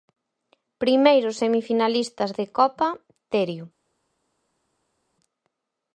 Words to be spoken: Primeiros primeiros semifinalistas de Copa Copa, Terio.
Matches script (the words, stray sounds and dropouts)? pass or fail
fail